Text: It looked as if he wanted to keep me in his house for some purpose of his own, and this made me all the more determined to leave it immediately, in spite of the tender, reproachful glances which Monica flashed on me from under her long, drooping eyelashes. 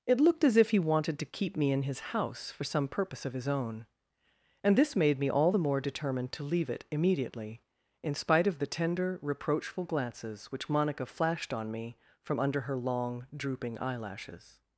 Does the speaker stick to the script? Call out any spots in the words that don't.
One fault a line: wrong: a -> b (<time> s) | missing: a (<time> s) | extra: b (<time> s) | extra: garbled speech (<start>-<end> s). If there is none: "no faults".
no faults